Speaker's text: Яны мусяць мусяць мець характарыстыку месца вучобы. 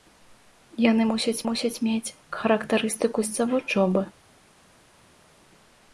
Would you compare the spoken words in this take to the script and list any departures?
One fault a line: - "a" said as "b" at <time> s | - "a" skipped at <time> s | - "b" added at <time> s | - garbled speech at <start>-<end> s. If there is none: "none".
none